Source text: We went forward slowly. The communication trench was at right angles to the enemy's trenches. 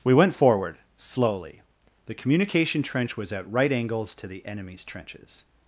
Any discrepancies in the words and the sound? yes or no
no